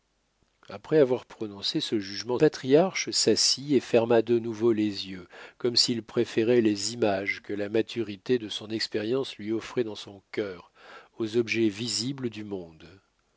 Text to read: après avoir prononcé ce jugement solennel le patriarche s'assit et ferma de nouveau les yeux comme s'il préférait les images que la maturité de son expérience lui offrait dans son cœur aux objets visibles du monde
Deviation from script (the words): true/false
true